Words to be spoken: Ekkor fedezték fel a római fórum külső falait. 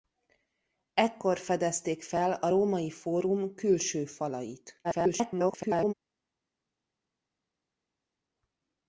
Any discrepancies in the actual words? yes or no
yes